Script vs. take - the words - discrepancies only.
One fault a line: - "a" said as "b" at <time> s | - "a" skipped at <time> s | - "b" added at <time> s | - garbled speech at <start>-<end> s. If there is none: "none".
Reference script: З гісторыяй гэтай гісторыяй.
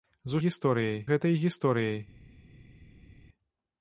none